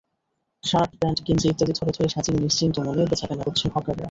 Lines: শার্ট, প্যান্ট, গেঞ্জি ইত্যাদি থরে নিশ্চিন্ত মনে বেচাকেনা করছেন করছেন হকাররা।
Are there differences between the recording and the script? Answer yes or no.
yes